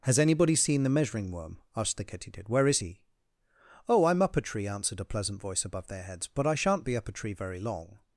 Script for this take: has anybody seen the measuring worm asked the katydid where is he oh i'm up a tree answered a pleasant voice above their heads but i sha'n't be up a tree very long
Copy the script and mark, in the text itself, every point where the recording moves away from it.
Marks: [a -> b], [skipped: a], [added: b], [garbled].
has anybody seen the measuring worm asked the katydid where is he oh i'm up a tree answered a pleasant voice above their heads but i sha'n't be up a tree very long